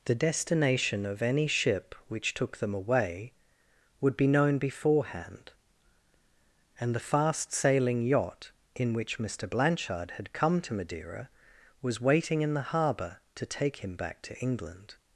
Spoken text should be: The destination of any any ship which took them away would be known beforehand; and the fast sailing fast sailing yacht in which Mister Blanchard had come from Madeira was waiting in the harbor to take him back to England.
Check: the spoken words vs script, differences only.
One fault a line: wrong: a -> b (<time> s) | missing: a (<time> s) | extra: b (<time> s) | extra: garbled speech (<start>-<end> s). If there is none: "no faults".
missing: any (1.4 s)
missing: fast sailing (8.0 s)
wrong: from -> to (10.6 s)